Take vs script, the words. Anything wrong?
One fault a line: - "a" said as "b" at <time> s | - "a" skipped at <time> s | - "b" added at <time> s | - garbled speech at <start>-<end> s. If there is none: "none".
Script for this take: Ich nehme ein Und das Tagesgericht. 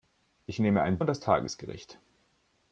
none